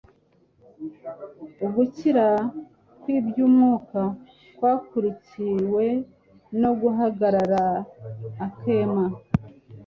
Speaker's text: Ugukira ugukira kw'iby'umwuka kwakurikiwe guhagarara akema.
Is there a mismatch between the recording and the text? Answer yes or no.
yes